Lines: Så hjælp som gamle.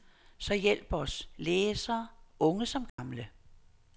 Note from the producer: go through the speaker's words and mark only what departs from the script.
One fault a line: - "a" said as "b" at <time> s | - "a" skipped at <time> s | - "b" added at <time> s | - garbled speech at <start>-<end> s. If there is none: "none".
- "os læsere unge" added at 0.9 s